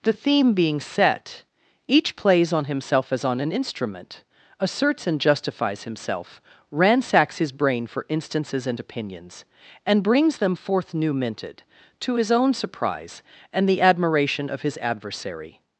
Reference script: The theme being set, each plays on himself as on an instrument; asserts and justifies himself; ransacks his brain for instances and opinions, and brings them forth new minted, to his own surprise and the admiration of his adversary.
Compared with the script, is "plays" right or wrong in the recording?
right